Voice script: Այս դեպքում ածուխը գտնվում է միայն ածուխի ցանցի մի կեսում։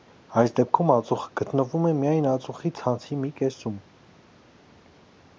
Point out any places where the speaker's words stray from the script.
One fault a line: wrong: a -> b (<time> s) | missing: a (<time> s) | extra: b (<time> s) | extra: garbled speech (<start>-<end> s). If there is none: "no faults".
no faults